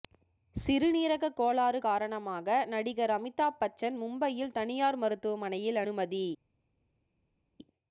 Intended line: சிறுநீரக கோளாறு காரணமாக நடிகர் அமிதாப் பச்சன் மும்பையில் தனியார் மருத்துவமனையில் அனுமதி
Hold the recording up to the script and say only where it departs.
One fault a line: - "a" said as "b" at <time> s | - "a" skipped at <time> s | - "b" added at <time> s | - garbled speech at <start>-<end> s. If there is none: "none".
none